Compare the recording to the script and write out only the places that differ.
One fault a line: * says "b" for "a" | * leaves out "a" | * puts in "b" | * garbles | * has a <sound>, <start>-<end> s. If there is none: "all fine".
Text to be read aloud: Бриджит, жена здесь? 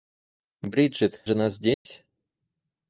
* has a dropout, 1.7-1.9 s